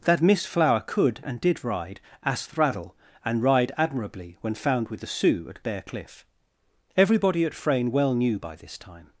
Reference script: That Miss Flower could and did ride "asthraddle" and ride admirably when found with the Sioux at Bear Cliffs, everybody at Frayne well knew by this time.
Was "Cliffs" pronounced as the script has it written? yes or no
no